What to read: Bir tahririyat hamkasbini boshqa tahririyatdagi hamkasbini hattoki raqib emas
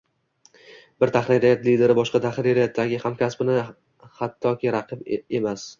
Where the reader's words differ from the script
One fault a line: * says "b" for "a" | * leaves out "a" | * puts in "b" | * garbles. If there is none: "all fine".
* says "lideri" for "hamkasbini"